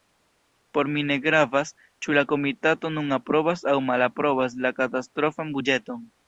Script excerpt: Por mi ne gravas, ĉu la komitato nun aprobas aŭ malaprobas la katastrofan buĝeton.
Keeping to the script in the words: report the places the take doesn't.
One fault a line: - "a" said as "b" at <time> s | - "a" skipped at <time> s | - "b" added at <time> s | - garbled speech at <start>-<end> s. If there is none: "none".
none